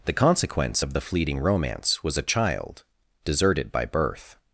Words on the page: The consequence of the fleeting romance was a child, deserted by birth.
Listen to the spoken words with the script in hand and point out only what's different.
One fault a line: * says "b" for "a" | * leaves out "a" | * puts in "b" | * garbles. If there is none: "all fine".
all fine